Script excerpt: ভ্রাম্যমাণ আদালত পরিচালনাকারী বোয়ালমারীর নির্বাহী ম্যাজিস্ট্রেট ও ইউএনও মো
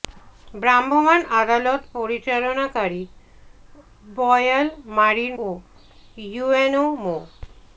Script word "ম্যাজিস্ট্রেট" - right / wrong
wrong